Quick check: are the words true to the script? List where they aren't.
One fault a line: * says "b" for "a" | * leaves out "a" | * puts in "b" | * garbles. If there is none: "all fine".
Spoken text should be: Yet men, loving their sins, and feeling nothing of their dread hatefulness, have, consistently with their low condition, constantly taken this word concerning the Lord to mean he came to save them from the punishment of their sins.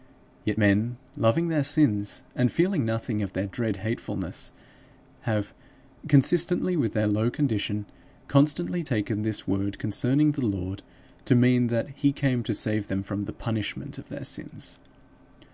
* puts in "that"